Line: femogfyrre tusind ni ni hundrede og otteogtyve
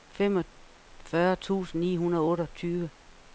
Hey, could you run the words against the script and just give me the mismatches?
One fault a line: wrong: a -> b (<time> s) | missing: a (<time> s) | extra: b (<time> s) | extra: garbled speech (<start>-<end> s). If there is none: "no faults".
missing: ni (1.9 s)